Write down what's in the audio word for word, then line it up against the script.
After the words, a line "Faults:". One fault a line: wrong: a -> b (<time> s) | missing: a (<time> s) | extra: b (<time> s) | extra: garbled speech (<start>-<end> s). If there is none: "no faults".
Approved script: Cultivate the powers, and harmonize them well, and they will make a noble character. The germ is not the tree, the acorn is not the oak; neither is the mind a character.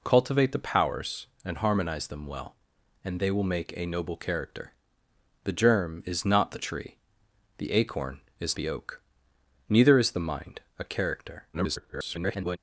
Cultivate the powers, and harmonize them well, and they will make a noble character. The germ is not the tree, the acorn is the oak; neither is the mind a character. [garbled]
Faults:
missing: not (8.6 s)
extra: garbled speech (11.5-12.6 s)